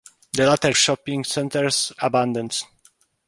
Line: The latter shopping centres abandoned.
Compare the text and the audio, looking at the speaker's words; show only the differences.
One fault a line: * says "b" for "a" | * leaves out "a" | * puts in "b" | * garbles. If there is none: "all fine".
all fine